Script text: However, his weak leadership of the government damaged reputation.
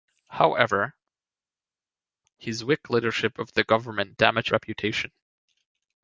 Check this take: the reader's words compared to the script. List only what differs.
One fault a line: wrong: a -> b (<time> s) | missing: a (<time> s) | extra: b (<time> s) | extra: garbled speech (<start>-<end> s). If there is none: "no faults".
no faults